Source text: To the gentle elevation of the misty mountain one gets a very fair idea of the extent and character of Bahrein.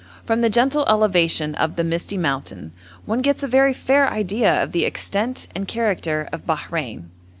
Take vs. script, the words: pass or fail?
fail